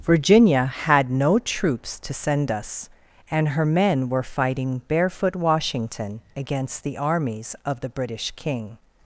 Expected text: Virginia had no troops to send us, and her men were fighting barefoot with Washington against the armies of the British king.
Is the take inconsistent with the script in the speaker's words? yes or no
yes